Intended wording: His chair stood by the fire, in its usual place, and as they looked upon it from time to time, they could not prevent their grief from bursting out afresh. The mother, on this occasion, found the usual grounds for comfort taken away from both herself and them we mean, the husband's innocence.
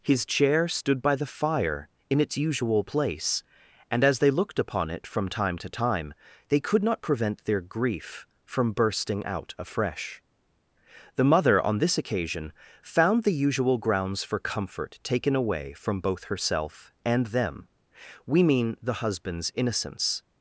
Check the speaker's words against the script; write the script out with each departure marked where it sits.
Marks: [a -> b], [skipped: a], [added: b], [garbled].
His chair stood by the fire, in its usual place, and as they looked upon it from time to time, they could not prevent their grief from bursting out afresh. The mother, on this occasion, found the usual grounds for comfort taken away from both herself and them we mean, the husband's innocence.